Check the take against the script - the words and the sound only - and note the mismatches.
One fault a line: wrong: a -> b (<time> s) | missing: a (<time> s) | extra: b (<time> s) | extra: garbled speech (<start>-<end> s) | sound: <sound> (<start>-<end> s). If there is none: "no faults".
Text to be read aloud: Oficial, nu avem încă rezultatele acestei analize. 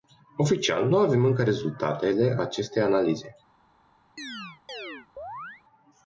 sound: chirp (4.2-5.6 s)